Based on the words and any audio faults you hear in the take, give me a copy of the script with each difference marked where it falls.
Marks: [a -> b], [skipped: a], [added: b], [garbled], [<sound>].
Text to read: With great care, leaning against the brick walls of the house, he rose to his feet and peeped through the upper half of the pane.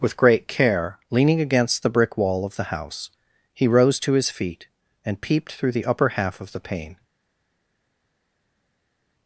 With great care, leaning against the brick [walls -> wall] of the house, he rose to his feet and peeped through the upper half of the pane.